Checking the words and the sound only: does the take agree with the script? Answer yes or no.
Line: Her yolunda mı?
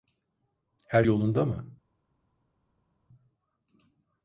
yes